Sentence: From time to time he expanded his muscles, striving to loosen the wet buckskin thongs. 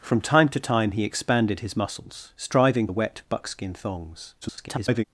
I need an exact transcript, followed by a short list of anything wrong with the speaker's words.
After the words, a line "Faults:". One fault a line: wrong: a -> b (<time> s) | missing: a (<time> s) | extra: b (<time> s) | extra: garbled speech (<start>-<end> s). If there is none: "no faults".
From time to time he expanded his muscles, striving the wet buckskin thongs. [garbled]
Faults:
missing: to loosen (2.9 s)
extra: garbled speech (4.4-5.0 s)